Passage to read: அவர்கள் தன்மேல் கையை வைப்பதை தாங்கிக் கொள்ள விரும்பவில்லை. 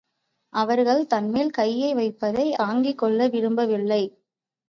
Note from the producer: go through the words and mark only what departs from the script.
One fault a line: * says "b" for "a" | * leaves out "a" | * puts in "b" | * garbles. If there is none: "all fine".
all fine